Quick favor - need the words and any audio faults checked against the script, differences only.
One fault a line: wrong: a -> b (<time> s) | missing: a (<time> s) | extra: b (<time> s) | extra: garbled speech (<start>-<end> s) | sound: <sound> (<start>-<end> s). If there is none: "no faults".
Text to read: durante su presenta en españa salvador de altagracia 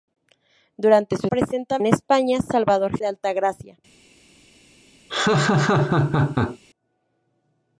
sound: laugh (5.1-6.6 s)